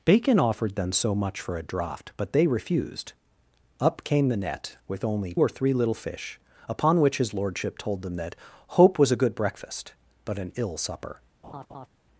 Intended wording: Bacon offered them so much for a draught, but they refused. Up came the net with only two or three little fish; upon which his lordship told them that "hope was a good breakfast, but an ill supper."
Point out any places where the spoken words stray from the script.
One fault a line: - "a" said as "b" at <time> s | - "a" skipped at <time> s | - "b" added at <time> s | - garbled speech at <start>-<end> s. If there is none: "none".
- "two" skipped at 5.3 s